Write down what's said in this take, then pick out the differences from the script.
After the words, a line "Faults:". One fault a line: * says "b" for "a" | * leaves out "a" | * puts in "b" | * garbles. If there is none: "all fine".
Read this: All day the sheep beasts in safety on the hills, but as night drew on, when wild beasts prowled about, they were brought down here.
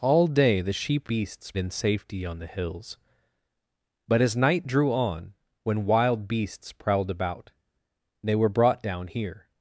All day the sheep beasts in safety on the hills, but as night drew on, when wild beasts prowled about, they were brought down here.
Faults:
all fine